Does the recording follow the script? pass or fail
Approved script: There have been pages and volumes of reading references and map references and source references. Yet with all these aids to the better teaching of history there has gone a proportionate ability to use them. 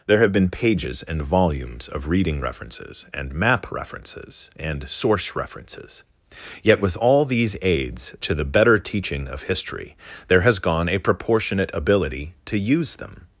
pass